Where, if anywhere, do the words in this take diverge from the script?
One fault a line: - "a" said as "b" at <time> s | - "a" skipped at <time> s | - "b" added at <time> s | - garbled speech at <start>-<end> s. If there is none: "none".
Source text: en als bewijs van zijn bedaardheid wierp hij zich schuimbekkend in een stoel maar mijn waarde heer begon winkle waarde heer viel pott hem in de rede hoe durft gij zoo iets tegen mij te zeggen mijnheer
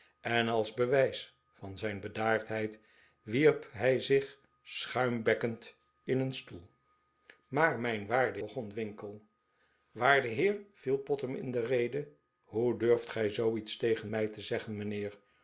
- "heer" skipped at 8.4 s